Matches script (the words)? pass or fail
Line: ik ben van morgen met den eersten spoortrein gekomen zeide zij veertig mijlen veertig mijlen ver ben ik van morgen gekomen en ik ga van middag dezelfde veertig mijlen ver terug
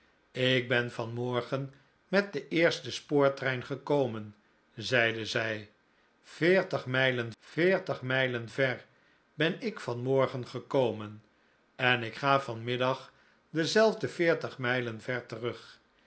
pass